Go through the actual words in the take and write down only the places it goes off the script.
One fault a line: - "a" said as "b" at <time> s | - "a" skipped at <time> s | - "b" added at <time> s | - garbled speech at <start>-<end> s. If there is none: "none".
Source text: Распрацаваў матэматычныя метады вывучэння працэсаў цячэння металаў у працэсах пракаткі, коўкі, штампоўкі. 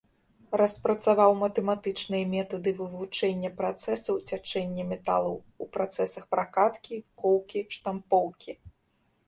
none